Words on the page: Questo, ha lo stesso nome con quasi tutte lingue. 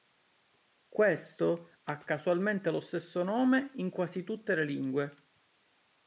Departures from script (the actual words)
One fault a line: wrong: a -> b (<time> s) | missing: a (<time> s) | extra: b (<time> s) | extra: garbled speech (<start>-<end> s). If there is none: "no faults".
extra: casualmente (2.0 s)
wrong: con -> in (3.8 s)
extra: le (4.5 s)